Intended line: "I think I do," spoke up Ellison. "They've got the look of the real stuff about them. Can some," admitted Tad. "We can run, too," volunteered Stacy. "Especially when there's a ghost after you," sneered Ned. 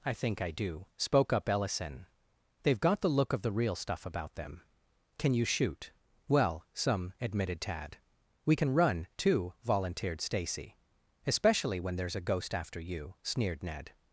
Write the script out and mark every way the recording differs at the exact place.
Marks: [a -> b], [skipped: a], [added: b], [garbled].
"I think I do," spoke up Ellison. "They've got the look of the real stuff about them. Can [added: you shoot Well] some," admitted Tad. "We can run, too," volunteered Stacy. "Especially when there's a ghost after you," sneered Ned.